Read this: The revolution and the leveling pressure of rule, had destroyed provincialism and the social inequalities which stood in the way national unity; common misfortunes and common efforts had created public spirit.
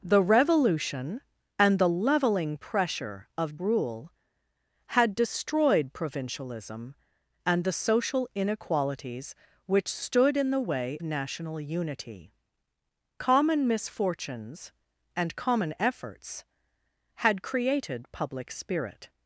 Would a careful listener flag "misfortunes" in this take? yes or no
no